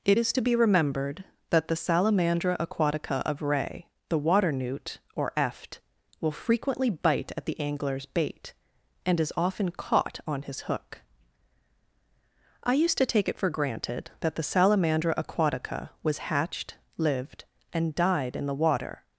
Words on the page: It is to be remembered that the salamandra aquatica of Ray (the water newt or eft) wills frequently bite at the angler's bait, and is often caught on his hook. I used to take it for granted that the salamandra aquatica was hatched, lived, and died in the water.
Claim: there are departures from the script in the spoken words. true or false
true